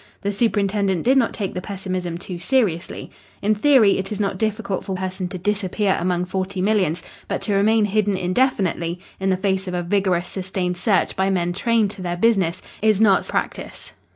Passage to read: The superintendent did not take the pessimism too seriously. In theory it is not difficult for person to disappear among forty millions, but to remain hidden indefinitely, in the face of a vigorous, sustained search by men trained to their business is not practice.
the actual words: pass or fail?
pass